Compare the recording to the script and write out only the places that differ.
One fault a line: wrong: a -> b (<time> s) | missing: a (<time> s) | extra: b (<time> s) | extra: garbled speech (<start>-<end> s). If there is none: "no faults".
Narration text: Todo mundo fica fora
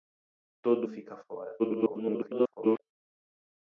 missing: mundo (0.9 s)
extra: garbled speech (1.6-2.8 s)